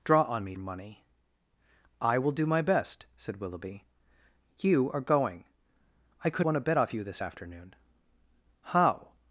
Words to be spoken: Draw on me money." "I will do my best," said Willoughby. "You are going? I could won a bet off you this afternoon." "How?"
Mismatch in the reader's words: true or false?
false